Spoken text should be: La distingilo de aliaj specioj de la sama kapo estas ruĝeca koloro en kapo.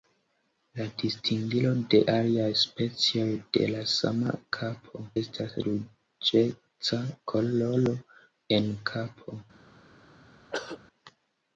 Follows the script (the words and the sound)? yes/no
no